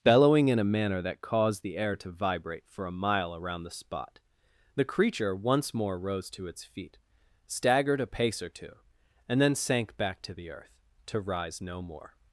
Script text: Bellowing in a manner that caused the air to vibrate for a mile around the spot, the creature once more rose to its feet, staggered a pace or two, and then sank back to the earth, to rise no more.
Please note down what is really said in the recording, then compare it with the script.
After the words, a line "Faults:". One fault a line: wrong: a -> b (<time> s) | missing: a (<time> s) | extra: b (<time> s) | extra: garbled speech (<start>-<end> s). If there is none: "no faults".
Bellowing in a manner that caused the air to vibrate for a mile around the spot, the creature once more rose to its feet, staggered a pace or two, and then sank back to the earth, to rise no more.
Faults:
no faults